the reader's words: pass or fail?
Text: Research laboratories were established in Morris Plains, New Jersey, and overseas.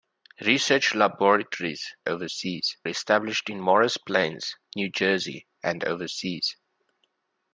fail